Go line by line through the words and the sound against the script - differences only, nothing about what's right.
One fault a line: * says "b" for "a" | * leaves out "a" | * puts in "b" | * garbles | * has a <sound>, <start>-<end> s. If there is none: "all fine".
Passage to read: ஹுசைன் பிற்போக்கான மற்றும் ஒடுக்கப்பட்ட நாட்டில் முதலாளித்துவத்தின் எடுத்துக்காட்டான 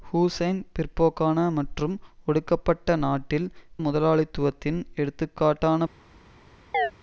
* has a chirp, 6.7-6.9 s